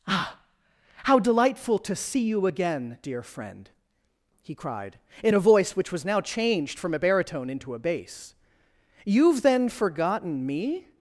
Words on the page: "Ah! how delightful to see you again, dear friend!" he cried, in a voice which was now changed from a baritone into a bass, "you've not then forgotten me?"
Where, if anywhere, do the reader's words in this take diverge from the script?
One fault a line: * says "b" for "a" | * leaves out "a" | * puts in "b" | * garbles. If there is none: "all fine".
* leaves out "not"